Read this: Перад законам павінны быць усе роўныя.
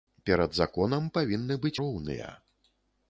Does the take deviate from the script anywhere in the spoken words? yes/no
yes